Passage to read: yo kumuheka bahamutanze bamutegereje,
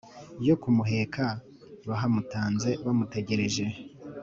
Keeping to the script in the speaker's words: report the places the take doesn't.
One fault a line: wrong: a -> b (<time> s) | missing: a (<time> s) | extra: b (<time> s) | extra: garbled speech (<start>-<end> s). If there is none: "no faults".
no faults